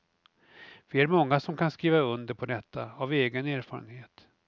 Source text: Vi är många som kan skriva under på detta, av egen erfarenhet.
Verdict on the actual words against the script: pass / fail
pass